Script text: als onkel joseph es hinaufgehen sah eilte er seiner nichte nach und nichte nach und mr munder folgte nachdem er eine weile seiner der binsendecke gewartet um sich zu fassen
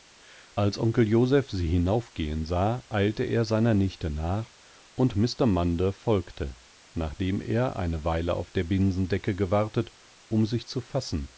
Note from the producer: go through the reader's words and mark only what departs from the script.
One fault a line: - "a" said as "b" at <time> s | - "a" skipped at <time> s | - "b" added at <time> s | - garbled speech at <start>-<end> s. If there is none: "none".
- "es" said as "sie" at 1.5 s
- "nichte nach und" skipped at 5.2 s
- "seiner" said as "auf" at 8.3 s